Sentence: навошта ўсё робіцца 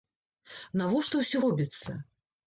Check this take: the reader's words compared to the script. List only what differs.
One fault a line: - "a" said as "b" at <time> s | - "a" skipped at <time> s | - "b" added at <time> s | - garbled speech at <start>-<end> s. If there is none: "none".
none